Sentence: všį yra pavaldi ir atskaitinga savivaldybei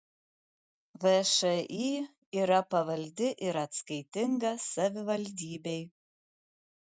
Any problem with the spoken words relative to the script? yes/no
no